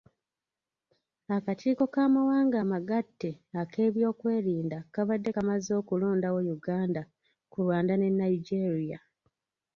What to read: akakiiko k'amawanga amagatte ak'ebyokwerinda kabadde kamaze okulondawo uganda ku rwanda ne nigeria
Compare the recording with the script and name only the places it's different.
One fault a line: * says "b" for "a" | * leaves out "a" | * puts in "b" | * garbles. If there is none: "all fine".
all fine